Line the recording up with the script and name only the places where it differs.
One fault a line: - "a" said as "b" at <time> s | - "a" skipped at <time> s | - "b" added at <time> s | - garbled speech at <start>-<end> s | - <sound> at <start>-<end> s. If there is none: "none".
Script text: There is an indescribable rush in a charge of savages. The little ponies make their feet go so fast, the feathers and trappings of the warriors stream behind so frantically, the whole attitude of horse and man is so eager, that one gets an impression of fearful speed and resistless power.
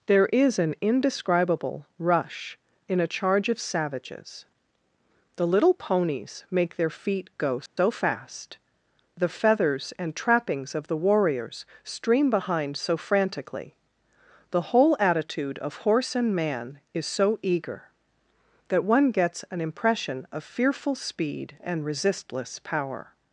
- dropout at 7.7-7.8 s